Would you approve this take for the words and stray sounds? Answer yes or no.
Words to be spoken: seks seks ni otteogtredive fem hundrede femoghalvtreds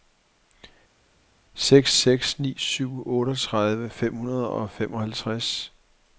no